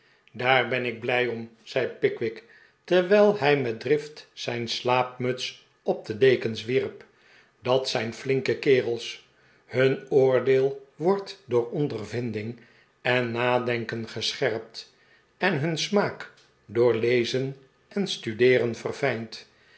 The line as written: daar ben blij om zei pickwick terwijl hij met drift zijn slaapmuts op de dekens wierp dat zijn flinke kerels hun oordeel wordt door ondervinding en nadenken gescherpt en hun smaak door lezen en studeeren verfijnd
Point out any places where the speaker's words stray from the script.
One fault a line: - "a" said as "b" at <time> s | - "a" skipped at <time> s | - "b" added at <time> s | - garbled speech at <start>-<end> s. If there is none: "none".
- "ik" added at 0.8 s